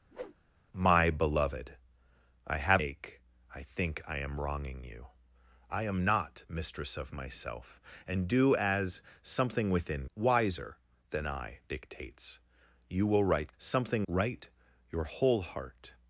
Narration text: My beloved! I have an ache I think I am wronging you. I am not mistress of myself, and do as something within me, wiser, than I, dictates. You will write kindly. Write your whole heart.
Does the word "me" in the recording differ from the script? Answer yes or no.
yes